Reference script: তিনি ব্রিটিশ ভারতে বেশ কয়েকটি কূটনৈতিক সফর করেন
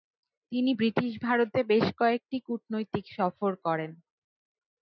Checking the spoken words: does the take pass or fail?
pass